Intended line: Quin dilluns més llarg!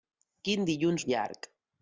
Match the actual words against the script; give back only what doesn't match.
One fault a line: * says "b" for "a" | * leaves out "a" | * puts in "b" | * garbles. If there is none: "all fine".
* leaves out "més"